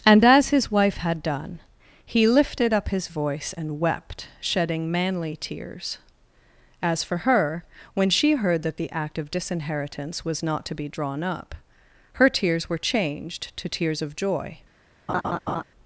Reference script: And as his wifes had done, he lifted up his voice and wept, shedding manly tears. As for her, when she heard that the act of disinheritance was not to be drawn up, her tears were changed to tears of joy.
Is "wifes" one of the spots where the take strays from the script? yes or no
yes